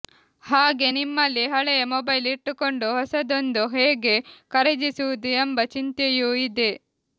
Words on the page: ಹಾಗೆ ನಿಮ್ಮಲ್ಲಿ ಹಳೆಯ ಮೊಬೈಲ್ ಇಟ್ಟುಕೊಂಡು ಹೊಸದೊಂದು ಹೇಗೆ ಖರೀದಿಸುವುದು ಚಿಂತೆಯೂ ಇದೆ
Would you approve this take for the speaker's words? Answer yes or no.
no